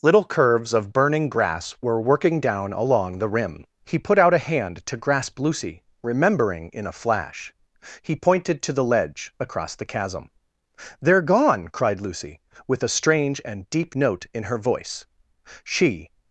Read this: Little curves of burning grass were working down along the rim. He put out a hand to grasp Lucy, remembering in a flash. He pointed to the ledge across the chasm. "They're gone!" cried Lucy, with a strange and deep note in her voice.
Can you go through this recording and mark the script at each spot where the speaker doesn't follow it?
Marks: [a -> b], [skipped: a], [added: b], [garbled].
Little curves of burning grass were working down along the rim. He put out a hand to grasp Lucy, remembering in a flash. He pointed to the ledge across the chasm. "They're gone!" cried Lucy, with a strange and deep note in her voice. [added: She]